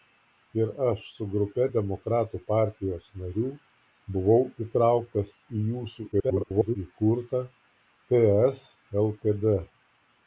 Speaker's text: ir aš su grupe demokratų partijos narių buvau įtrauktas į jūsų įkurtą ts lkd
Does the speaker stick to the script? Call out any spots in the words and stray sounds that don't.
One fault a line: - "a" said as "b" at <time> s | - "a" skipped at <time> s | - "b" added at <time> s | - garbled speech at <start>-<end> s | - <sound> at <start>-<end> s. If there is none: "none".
- garbled speech at 6.1-6.8 s